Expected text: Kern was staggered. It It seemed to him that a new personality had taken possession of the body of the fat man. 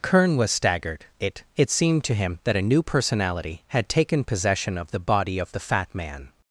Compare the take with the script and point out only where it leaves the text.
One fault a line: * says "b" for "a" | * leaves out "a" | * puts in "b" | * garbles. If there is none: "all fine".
all fine